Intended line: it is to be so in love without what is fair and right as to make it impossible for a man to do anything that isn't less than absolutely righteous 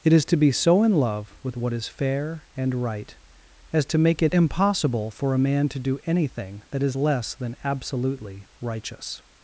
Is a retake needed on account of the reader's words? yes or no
yes